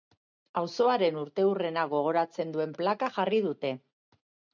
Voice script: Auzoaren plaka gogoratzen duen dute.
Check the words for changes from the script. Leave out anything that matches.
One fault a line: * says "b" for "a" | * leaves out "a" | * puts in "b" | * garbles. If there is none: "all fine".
* says "urteurrena" for "plaka"
* puts in "plaka jarri"